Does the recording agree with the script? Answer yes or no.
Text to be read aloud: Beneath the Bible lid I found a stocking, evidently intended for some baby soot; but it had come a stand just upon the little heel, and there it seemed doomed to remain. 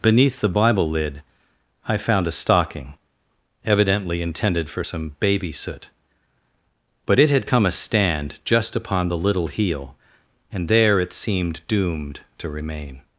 yes